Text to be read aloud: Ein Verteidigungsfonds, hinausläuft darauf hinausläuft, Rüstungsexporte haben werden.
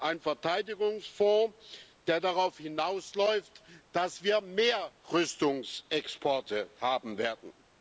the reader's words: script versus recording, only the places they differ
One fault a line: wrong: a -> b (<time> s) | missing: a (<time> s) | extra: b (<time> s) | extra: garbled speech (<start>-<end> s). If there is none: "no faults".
wrong: hinausläuft -> der (2.1 s)
extra: dass wir mehr (3.9 s)